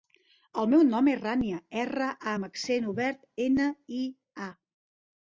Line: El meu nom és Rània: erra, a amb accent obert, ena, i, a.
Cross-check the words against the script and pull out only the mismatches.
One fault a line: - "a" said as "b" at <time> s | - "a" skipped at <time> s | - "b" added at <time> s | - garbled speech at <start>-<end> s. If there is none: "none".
none